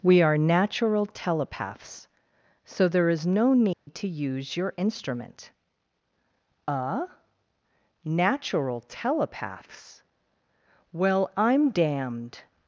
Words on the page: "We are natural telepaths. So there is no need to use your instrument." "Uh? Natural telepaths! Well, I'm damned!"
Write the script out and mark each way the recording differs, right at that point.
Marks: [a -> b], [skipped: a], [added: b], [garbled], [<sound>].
"We are natural telepaths. So there is no need [dropout] to use your instrument." "Uh? Natural telepaths! Well, I'm damned!"